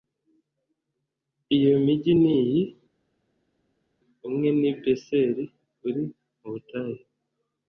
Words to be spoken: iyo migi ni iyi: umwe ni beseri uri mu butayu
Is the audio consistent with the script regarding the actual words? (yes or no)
yes